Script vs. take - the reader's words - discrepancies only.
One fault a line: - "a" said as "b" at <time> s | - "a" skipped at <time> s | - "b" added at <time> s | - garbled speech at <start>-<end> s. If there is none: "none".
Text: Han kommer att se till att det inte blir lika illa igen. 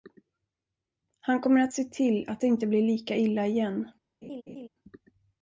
none